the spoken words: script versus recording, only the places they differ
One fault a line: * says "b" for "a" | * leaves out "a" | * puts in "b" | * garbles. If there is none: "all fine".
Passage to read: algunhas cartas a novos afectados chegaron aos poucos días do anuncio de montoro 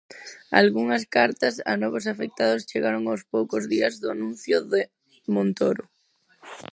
all fine